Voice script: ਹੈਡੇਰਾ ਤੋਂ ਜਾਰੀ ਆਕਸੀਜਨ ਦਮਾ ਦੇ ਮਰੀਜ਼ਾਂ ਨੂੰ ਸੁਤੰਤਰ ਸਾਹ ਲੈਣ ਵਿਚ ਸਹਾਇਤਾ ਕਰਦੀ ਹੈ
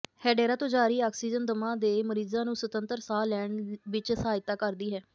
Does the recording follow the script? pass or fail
pass